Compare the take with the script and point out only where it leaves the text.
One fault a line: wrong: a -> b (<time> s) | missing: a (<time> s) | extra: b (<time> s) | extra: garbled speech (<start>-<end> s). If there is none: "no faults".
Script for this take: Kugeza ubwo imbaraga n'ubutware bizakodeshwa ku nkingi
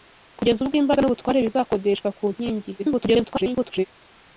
extra: garbled speech (2.8-3.9 s)